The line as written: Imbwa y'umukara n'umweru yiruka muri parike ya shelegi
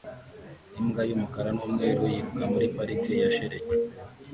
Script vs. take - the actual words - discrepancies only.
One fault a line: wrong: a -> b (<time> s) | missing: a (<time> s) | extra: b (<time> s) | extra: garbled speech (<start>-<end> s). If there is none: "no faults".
no faults